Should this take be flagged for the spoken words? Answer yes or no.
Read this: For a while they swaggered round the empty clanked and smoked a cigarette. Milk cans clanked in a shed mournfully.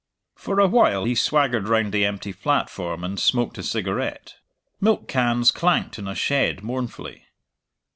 yes